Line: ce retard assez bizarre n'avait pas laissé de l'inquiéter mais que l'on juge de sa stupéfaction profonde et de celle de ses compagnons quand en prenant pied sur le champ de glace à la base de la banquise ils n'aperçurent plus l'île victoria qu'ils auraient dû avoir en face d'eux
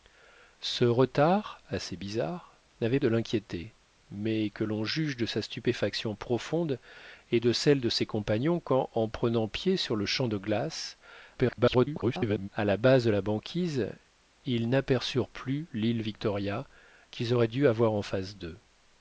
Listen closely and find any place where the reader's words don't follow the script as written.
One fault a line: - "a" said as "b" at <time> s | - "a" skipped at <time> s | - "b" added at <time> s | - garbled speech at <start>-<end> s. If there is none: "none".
- "pas laissé" skipped at 3.0 s
- garbled speech at 11.3-12.5 s